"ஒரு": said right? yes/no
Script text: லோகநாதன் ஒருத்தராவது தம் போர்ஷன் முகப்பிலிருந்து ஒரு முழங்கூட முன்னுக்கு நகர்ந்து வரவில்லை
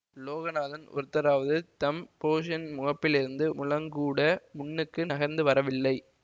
no